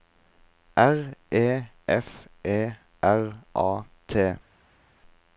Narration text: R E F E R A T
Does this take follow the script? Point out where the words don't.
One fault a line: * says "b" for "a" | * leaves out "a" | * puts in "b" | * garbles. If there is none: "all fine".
all fine